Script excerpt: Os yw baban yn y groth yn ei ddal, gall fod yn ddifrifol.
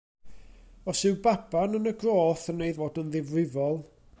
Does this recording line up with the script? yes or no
no